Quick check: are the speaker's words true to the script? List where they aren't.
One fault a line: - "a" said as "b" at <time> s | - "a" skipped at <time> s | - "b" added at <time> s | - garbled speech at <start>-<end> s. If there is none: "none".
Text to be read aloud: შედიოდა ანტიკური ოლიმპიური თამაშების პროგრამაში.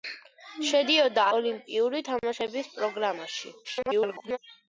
- "ანტიკური" skipped at 1.2 s
- garbled speech at 3.6-4.4 s